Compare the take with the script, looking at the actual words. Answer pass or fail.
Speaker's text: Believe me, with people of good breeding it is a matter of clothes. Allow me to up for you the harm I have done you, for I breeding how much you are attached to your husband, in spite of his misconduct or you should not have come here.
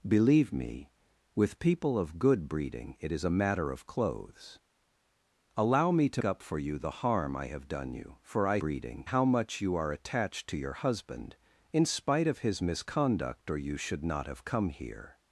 pass